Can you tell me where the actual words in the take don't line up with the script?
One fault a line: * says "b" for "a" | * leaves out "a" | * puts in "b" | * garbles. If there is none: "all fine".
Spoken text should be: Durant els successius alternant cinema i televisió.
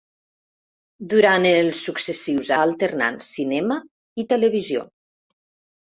all fine